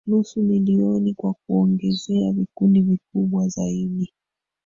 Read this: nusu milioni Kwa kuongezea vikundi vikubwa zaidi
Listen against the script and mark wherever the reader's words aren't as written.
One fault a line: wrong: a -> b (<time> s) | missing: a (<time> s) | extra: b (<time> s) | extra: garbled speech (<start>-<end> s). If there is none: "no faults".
no faults